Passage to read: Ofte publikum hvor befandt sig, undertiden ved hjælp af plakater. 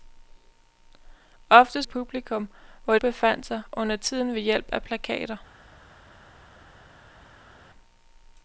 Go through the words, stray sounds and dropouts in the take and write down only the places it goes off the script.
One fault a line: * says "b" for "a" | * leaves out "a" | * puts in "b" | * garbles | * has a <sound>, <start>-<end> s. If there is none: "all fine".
all fine